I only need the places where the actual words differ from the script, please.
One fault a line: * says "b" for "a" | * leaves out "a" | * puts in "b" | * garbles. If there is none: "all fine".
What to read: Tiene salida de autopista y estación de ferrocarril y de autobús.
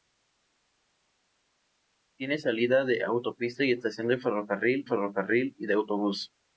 * puts in "ferrocarril"